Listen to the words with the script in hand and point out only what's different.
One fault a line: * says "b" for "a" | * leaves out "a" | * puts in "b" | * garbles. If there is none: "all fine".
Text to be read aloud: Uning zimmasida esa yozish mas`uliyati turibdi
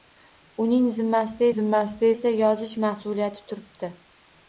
* puts in "zimmasida"